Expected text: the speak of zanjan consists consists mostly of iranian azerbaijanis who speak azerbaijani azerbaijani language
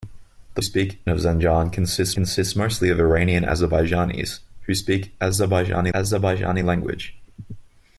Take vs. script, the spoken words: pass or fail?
pass